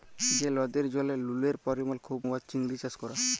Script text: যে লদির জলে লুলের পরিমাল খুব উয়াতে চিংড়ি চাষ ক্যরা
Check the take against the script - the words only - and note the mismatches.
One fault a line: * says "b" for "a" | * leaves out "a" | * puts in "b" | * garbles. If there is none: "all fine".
all fine